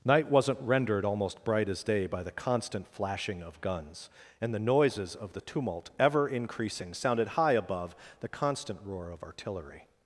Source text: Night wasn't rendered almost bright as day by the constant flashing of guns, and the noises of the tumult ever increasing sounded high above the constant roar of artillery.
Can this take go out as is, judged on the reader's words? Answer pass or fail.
pass